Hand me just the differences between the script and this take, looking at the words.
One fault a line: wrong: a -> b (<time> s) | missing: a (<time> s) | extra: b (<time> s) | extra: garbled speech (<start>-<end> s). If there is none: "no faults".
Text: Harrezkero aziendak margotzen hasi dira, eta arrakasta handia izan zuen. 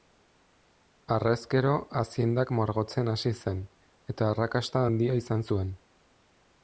wrong: dira -> zen (3.4 s)